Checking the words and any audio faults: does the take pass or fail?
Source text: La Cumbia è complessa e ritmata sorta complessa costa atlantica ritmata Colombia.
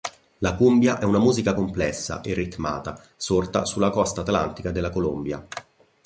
fail